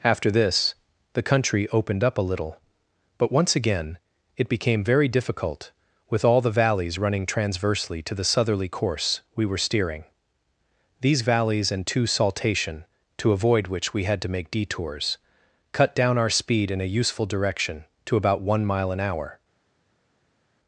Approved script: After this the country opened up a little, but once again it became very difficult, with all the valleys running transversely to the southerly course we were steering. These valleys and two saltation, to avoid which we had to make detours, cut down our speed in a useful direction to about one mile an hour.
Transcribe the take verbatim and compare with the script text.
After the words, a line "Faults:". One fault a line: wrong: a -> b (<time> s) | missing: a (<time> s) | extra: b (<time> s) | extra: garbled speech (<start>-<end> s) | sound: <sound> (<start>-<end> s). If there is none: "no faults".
After this the country opened up a little, but once again it became very difficult, with all the valleys running transversely to the southerly course we were steering. These valleys and two saltation, to avoid which we had to make detours, cut down our speed in a useful direction to about one mile an hour.
Faults:
no faults